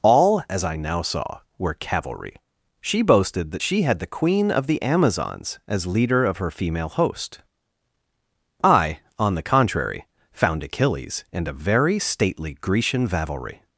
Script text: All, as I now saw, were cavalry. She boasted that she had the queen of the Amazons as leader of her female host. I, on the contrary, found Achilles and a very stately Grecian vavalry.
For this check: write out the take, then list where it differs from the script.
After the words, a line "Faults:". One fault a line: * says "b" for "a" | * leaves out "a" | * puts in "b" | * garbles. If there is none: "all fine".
All, as I now saw, were cavalry. She boasted that she had the queen of the Amazons as leader of her female host. I, on the contrary, found Achilles and a very stately Grecian vavalry.
Faults:
all fine